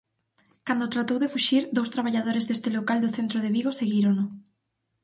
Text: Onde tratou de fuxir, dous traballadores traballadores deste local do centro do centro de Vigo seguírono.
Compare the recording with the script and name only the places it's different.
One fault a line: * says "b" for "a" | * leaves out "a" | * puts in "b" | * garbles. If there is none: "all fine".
* says "Cando" for "Onde"
* leaves out "traballadores"
* leaves out "do centro"